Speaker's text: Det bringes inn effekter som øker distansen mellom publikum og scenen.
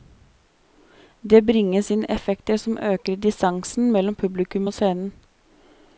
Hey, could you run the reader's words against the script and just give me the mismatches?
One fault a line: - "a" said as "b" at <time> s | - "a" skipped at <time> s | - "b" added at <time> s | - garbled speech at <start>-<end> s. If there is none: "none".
none